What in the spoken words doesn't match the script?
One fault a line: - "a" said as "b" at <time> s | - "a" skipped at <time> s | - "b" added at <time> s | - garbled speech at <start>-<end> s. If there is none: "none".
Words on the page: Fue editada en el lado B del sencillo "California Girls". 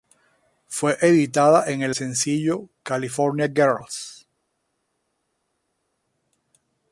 - "lado B del" skipped at 1.9 s